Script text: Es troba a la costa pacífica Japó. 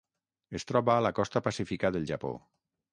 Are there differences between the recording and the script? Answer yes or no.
yes